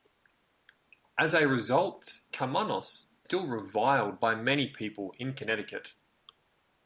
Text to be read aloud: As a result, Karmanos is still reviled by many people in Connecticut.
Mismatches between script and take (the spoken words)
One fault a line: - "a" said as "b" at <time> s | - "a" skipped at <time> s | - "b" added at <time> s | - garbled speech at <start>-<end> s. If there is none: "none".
- "is" skipped at 3.1 s